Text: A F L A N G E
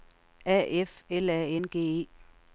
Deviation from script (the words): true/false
false